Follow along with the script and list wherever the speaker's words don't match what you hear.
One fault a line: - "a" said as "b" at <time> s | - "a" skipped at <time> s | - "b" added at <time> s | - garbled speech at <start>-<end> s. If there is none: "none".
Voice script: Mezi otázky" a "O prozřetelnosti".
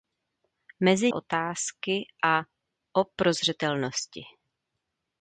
none